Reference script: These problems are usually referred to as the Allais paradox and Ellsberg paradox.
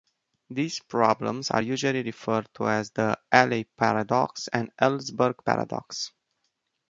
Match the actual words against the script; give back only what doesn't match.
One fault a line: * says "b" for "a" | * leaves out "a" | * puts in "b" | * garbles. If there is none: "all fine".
all fine